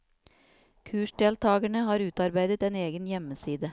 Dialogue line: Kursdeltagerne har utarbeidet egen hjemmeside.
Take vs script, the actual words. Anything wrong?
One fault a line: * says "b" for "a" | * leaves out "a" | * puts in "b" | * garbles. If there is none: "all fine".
* puts in "en"